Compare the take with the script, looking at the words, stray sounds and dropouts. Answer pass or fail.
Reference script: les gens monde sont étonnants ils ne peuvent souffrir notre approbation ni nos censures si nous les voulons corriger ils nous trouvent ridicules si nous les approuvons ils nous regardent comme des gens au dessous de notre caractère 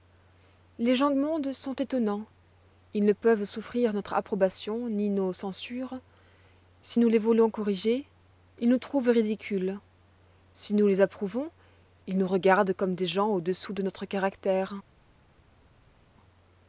pass